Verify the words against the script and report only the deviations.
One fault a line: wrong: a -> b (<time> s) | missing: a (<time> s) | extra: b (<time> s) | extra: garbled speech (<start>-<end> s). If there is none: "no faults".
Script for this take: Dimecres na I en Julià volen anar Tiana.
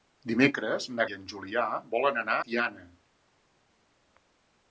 no faults